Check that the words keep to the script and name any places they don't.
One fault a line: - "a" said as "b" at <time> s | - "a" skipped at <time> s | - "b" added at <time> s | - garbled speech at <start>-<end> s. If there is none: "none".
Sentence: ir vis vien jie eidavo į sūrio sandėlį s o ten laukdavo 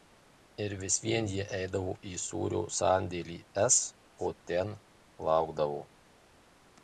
none